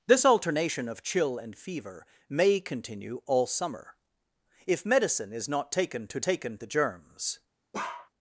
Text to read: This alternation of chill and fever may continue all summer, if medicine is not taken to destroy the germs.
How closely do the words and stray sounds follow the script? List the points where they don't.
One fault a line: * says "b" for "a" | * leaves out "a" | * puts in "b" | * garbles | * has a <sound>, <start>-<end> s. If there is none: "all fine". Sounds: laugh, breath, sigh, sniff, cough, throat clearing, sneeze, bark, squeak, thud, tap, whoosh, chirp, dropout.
* says "taken" for "destroy"
* has a bark, 7.7-8.1 s